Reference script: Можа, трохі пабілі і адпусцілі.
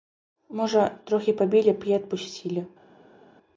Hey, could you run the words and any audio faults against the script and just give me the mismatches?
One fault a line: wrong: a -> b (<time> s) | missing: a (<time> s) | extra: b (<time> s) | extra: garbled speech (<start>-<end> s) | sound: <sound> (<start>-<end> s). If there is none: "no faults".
extra: б (1.8 s)